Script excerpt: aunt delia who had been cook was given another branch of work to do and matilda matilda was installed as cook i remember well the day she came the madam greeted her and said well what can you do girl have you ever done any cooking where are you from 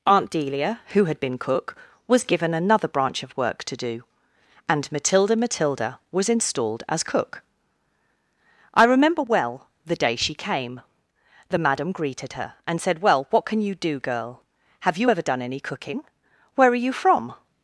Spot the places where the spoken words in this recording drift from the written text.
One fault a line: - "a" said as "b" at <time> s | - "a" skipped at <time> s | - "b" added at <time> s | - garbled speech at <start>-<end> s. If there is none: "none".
none